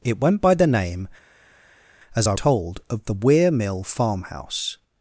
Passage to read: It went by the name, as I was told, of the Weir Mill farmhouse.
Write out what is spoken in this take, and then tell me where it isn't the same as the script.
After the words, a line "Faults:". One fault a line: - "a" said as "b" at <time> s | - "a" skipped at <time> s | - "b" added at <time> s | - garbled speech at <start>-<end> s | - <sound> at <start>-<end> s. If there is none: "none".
It went by the name, as I told, of the Weir Mill farmhouse.
Faults:
- "was" skipped at 2.3 s